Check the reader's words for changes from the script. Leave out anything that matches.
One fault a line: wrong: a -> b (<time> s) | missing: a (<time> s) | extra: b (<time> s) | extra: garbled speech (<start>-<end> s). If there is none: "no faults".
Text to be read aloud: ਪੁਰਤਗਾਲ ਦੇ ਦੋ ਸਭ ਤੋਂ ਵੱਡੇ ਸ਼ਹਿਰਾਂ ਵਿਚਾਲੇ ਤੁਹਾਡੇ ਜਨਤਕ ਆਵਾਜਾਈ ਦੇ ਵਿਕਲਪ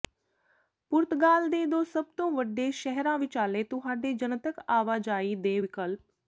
no faults